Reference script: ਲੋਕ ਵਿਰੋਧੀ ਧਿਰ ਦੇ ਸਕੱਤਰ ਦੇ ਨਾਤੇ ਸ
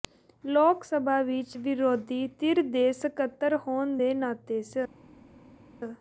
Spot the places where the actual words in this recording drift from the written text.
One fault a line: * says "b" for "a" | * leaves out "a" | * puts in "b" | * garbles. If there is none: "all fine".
* puts in "ਸਭਾ ਵਿਚ"
* puts in "ਹੋਣ"